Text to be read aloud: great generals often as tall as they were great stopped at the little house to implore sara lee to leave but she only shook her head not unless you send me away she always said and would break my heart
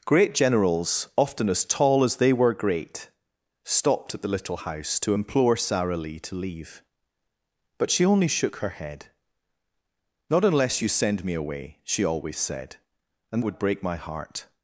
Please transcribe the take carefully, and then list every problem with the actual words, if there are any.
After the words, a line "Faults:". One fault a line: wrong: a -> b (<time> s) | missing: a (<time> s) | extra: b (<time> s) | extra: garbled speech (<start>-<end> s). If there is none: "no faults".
great generals often as tall as they were great stopped at the little house to implore sara lee to leave but she only shook her head not unless you send me away she always said and would break my heart
Faults:
no faults